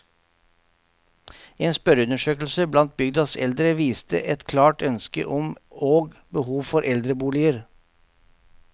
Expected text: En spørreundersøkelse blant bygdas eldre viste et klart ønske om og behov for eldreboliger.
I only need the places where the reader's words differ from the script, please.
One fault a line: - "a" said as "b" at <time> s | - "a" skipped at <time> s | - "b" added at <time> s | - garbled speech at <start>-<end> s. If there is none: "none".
none